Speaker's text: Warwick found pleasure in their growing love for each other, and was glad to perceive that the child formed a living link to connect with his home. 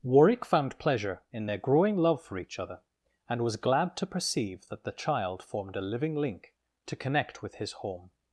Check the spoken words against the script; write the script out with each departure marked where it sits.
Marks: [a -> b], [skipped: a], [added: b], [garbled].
Warwick found pleasure in their growing love for each other, and was glad to perceive that the child formed a living link to connect with his home.